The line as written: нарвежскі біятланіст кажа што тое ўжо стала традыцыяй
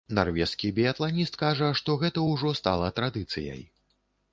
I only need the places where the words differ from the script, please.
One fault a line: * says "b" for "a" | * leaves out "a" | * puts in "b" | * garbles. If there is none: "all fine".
* says "гэта" for "тое"